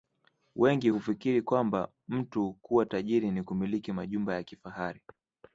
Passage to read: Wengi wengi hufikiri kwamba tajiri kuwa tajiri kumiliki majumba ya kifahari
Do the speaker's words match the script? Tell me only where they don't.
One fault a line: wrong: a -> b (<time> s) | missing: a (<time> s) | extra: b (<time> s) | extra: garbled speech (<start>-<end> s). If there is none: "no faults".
missing: wengi (0.9 s)
wrong: tajiri -> mtu (2.1 s)
extra: ni (3.3 s)